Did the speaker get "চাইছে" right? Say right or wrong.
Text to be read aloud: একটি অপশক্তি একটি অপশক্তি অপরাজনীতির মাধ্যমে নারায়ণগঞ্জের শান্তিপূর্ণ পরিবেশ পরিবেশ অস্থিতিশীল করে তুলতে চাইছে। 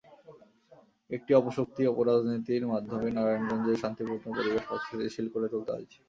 right